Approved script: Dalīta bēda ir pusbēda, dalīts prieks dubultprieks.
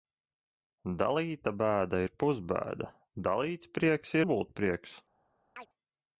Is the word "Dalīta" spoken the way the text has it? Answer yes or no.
yes